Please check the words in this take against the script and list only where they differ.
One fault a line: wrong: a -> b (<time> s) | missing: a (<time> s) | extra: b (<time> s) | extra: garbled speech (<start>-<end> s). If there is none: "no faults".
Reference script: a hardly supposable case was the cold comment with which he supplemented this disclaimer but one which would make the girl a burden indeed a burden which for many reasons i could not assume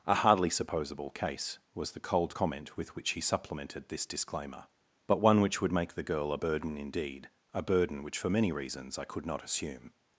no faults